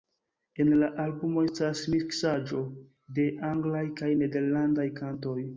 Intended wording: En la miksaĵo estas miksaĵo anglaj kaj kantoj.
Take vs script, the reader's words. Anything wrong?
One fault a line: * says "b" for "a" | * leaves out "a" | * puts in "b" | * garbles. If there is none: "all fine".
* says "albumo" for "miksaĵo"
* puts in "de"
* puts in "nederlandaj"